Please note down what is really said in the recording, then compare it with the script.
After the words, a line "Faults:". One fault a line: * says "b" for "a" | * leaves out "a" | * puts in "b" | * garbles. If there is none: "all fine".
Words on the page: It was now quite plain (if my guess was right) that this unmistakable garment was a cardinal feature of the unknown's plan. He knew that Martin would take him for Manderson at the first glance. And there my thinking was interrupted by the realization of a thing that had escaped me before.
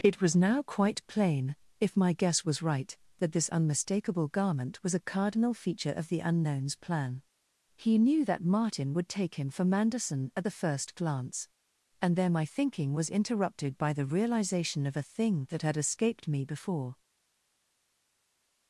It was now quite plain (if my guess was right) that this unmistakable garment was a cardinal feature of the unknown's plan. He knew that Martin would take him for Manderson at the first glance. And there my thinking was interrupted by the realization of a thing that had escaped me before.
Faults:
all fine